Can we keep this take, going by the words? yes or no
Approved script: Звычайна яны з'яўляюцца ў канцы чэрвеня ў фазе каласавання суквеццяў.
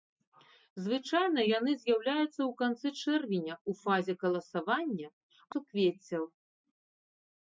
yes